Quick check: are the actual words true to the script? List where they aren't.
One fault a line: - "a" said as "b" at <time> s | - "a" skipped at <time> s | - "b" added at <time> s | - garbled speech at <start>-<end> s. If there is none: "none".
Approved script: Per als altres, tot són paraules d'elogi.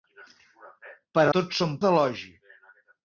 - "als altres" skipped at 1.2 s
- "paraules" skipped at 1.7 s